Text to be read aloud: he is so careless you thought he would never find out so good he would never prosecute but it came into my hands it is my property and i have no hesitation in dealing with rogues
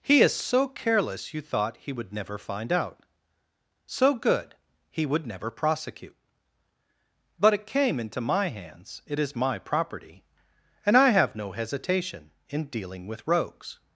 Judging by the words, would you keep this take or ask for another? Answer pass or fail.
pass